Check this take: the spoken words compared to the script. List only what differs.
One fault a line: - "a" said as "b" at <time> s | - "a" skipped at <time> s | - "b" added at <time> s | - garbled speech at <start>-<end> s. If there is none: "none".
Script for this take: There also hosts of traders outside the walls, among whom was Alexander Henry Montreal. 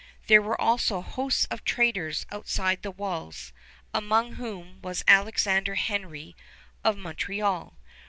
- "were" added at 0.4 s
- "of" added at 6.8 s